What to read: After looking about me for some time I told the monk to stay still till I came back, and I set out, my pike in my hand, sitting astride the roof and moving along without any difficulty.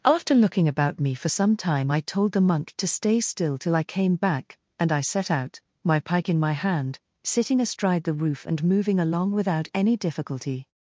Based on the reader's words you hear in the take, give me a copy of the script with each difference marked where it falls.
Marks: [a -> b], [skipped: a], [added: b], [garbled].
After looking about me for some time I told the monk to stay still till I came back, and I set out, my pike in my hand, sitting astride the roof and moving along without any difficulty.